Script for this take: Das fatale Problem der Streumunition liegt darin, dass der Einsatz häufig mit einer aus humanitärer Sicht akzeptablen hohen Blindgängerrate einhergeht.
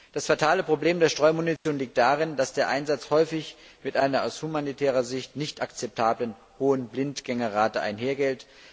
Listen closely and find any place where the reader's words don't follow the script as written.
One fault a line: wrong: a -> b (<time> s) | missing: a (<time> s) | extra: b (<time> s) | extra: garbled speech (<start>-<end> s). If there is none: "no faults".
extra: nicht (5.3 s)